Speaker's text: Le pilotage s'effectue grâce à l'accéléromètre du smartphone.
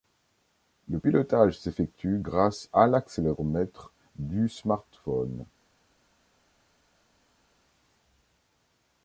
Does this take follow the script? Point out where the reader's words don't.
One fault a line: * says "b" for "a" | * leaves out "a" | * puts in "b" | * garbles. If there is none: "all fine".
all fine